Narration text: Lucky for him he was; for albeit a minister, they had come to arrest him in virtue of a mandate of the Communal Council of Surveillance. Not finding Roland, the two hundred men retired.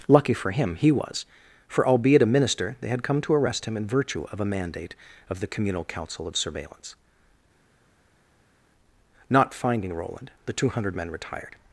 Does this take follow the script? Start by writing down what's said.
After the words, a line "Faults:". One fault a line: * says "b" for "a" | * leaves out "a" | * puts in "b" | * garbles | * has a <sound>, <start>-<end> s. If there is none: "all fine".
Lucky for him he was; for albeit a minister, they had come to arrest him in virtue of a mandate of the Communal Council of Surveillance. Not finding Roland, the two hundred men retired.
Faults:
all fine